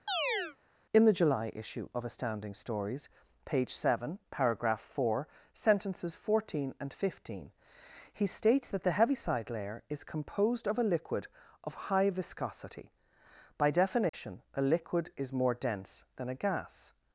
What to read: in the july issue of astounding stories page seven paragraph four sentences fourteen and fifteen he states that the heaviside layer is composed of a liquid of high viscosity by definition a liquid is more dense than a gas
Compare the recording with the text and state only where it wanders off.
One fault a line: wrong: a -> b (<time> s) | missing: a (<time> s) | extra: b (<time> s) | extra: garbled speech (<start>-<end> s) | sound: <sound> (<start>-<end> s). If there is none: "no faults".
sound: chirp (0.1-0.6 s)
sound: dropout (14.1-14.1 s)